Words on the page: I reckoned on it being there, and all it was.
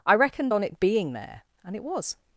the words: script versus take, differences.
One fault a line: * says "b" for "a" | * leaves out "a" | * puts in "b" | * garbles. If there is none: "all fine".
* leaves out "all"